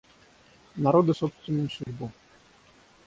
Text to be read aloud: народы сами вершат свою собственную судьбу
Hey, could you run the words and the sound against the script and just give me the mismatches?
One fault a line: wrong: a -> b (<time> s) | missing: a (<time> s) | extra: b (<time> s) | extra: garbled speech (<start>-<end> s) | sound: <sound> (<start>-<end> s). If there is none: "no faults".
missing: сами вершат свою (1.1 s)
sound: dropout (1.8-1.9 s)